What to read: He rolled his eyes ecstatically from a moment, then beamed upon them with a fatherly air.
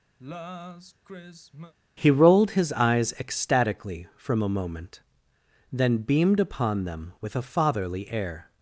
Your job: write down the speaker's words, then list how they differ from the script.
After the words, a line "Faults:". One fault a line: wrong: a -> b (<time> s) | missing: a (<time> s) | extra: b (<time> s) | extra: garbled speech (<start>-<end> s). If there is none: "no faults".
He rolled his eyes ecstatically from a moment, then beamed upon them with a fatherly air.
Faults:
no faults